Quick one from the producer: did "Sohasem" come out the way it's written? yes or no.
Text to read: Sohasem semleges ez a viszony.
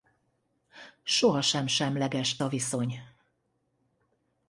yes